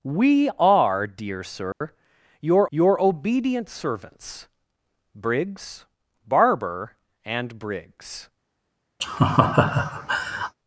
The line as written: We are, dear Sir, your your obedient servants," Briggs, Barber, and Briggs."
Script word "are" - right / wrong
right